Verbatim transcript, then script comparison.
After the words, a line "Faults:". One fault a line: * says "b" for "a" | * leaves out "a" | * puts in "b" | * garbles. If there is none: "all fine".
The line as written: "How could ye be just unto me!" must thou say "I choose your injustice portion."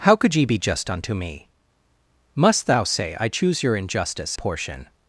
"How could ye be just unto me!" must thou say "I choose your injustice portion."
Faults:
all fine